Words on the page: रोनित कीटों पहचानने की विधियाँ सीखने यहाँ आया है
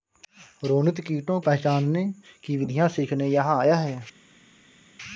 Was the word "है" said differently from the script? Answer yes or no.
no